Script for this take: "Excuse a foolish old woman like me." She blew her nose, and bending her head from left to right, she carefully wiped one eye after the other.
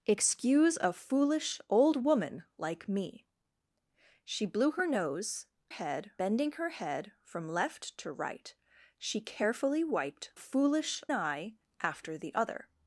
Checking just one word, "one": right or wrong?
wrong